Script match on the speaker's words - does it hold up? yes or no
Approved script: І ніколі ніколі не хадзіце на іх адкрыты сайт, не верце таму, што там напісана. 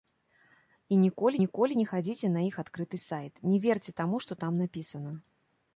yes